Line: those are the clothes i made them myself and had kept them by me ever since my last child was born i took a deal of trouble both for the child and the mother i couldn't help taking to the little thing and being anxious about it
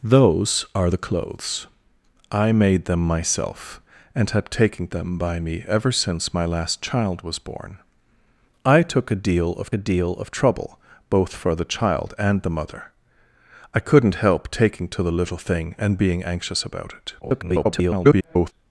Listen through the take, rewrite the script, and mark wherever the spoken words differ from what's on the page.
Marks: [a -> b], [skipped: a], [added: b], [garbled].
those are the clothes i made them myself and had [kept -> taking] them by me ever since my last child was born i took a deal of [added: a deal of] trouble both for the child and the mother i couldn't help taking to the little thing and being anxious about it [garbled]